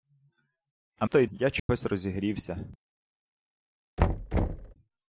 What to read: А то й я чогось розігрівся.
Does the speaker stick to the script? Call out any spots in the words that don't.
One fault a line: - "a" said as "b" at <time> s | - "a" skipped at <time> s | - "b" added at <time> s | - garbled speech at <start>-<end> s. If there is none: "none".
none